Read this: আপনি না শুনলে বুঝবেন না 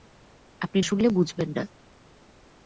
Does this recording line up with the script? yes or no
no